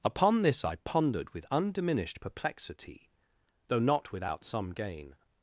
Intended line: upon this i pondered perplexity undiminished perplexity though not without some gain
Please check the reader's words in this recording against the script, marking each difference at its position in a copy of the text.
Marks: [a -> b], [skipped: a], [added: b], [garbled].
upon this i pondered [perplexity -> with] undiminished perplexity though not without some gain